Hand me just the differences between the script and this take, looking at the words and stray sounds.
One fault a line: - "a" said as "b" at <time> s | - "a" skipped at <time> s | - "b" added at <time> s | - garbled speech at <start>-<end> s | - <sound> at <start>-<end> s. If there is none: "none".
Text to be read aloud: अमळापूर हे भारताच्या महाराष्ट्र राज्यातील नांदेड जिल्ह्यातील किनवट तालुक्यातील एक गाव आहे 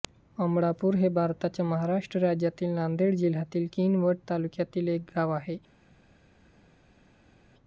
none